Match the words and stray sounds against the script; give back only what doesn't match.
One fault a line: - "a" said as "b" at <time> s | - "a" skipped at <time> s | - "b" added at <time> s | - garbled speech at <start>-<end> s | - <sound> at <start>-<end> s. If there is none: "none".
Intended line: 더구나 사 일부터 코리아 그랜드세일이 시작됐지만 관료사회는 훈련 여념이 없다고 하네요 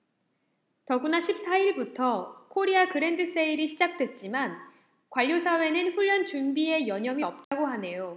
- "십" added at 1.2 s
- "준비에" added at 6.2 s
- dropout at 7.4-7.5 s